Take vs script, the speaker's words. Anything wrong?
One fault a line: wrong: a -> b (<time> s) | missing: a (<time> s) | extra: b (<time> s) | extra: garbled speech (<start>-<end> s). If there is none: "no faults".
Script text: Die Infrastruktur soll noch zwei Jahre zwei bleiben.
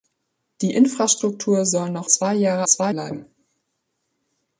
no faults